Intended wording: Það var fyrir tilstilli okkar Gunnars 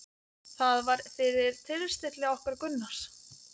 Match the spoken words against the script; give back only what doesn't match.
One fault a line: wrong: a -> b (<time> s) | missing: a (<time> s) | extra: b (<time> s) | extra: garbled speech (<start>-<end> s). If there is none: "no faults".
no faults